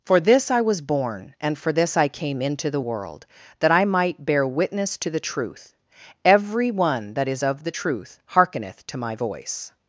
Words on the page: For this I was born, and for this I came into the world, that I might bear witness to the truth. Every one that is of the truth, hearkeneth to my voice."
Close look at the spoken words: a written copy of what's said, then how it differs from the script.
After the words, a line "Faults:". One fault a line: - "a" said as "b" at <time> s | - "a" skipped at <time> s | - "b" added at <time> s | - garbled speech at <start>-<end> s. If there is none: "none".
For this I was born, and for this I came into the world, that I might bear witness to the truth. Every one that is of the truth, hearkeneth to my voice."
Faults:
none